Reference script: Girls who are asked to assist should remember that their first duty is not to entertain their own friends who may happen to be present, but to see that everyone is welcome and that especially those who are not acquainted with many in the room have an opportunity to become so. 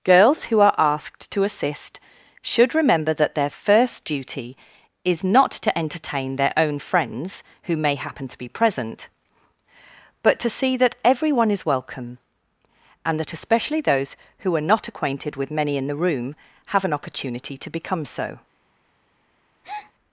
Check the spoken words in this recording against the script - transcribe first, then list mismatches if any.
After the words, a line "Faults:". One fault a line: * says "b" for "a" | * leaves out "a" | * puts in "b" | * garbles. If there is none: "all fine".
Girls who are asked to assist should remember that their first duty is not to entertain their own friends who may happen to be present, but to see that everyone is welcome and that especially those who are not acquainted with many in the room have an opportunity to become so.
Faults:
all fine